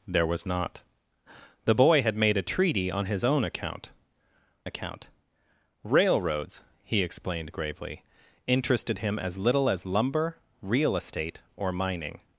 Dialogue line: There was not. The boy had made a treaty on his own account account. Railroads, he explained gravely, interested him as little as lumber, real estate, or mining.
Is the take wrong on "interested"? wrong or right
right